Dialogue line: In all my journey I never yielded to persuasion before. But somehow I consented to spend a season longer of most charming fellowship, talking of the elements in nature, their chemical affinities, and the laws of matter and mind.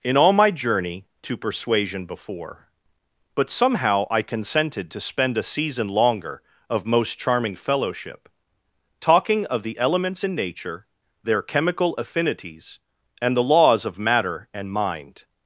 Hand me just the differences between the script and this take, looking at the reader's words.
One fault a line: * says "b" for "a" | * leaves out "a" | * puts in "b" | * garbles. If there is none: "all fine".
* leaves out "I never yielded"